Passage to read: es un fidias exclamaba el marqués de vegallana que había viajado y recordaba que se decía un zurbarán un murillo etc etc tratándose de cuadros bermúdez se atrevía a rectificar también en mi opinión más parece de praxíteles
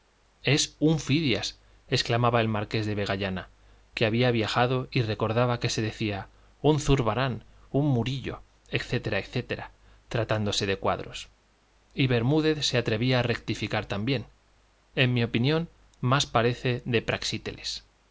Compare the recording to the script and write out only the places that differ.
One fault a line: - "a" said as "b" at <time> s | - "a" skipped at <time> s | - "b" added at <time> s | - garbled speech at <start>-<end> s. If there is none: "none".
- "y" added at 11.9 s